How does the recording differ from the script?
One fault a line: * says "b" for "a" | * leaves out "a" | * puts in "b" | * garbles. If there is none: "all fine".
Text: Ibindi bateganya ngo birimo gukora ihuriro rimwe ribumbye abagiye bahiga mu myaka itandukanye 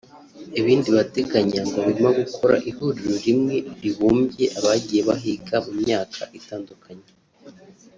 all fine